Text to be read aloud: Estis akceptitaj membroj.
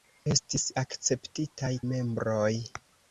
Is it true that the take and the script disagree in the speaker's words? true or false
false